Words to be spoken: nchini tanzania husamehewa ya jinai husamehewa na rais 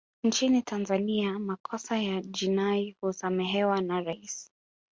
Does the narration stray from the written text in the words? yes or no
yes